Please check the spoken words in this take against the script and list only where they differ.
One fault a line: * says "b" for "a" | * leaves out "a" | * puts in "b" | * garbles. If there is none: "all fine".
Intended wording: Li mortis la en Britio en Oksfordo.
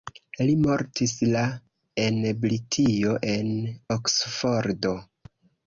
all fine